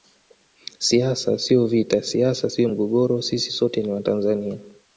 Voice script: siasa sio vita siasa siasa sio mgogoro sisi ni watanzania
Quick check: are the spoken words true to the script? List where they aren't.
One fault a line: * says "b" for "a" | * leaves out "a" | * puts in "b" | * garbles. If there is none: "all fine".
* leaves out "siasa"
* puts in "sote"